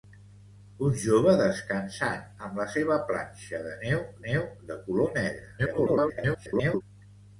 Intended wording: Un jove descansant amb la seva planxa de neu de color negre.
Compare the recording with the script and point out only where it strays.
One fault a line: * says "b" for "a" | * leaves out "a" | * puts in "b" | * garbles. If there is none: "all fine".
* puts in "neu"
* garbles